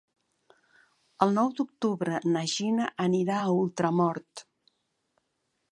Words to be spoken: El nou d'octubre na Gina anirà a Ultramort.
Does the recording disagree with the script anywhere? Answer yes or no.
no